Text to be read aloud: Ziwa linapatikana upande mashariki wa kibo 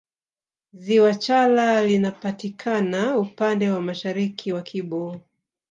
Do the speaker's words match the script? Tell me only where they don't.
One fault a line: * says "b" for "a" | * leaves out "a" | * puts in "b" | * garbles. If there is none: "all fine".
* puts in "chala"
* puts in "wa"